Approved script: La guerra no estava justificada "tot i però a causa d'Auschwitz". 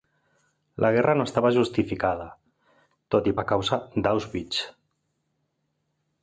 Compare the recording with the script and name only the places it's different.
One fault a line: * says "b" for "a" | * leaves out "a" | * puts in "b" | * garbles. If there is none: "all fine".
* leaves out "però"